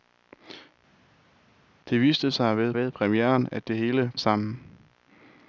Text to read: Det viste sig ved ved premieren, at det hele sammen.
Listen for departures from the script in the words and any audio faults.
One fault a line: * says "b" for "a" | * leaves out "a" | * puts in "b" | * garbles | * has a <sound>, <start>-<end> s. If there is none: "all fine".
all fine